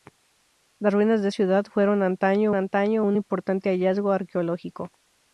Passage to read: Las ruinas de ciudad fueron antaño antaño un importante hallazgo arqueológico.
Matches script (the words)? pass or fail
pass